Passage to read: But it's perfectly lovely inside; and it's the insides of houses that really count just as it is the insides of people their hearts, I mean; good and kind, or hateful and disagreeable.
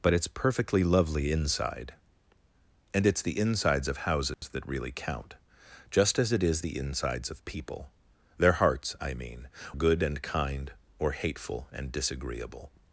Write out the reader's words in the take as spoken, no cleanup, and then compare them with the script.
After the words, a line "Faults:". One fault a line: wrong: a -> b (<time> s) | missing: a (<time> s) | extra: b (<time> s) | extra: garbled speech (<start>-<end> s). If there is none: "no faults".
But it's perfectly lovely inside; and it's the insides of houses that really count just as it is the insides of people their hearts, I mean; good and kind, or hateful and disagreeable.
Faults:
no faults